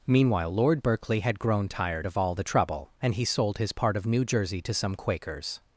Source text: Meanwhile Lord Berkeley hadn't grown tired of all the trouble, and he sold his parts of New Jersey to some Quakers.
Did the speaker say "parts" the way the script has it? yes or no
no